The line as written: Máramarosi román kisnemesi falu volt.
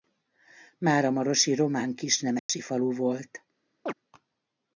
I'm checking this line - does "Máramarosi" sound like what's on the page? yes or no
yes